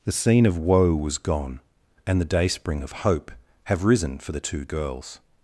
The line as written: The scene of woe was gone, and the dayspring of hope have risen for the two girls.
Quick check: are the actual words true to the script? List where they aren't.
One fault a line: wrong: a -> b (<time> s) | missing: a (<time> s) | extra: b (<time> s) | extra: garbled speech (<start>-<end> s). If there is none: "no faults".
no faults